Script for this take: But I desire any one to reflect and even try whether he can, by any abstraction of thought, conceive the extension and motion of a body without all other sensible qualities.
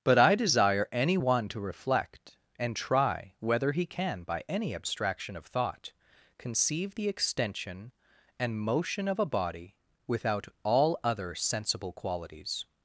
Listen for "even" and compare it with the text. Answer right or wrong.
wrong